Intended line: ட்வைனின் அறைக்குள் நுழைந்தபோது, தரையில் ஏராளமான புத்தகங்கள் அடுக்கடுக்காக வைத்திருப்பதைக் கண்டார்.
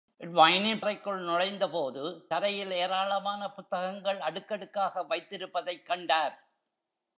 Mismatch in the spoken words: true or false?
false